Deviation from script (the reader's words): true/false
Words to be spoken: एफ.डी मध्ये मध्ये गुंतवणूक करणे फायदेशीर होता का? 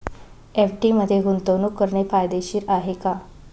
true